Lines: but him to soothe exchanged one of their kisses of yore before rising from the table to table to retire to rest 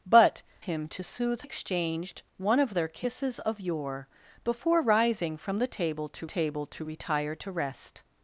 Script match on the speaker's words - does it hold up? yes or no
yes